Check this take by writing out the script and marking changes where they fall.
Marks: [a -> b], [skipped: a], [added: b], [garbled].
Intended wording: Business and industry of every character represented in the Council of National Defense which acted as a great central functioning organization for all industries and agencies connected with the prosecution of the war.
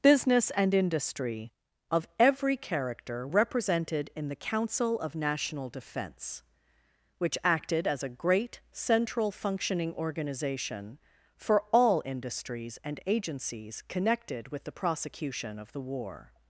Business and industry of every character represented in the Council of National Defense which acted as a great central functioning organization for all industries and agencies connected with the prosecution of the war.